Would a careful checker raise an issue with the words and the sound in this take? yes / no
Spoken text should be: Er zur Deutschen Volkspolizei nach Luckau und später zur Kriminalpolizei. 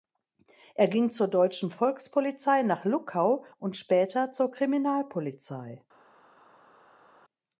yes